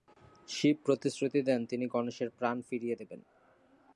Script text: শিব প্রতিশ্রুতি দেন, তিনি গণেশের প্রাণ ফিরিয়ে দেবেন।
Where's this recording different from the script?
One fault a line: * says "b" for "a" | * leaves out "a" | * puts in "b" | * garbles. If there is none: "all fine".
all fine